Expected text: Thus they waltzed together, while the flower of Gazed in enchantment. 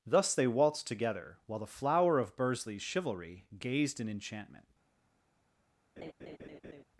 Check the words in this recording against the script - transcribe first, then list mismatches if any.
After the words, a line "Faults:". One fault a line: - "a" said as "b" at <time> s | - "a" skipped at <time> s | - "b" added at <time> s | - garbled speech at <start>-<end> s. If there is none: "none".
Thus they waltzed together, while the flower of Bursley's chivalry gazed in enchantment.
Faults:
- "Bursley's chivalry" added at 2.4 s